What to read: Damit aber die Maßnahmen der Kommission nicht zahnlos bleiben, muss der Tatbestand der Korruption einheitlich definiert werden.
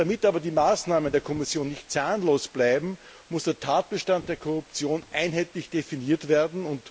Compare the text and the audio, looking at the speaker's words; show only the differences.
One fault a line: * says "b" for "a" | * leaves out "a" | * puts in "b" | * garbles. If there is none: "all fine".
all fine